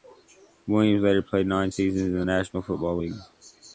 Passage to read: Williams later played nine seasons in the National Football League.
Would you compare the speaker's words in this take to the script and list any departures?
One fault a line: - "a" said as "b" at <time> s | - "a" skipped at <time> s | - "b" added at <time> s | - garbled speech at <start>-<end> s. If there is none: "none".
none